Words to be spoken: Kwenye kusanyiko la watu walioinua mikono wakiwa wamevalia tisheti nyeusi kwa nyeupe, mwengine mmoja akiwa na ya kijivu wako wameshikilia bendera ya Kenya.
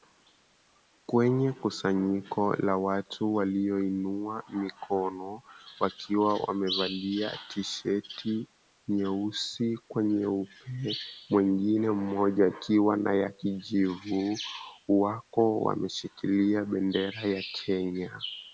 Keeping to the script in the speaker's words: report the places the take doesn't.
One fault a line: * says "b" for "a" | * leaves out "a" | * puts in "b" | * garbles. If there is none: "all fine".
all fine